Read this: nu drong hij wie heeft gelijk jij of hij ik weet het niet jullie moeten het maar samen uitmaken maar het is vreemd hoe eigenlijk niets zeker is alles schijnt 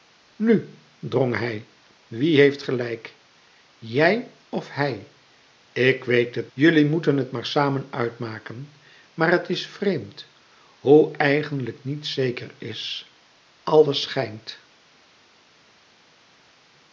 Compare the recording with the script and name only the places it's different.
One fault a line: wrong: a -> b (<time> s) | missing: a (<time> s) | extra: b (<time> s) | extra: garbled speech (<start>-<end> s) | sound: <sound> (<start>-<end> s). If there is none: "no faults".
missing: niet (6.5 s)